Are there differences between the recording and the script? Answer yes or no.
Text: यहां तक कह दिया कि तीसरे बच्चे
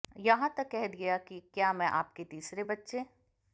yes